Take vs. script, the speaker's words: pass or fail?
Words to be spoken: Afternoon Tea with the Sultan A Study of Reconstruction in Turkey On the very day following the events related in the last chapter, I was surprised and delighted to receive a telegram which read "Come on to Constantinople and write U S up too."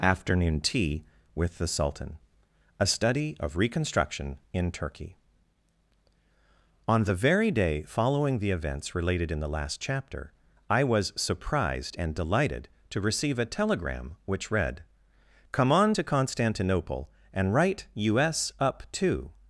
pass